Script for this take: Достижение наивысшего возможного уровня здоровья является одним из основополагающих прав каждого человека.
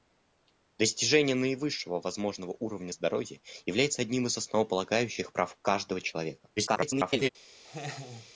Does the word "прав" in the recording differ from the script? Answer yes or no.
no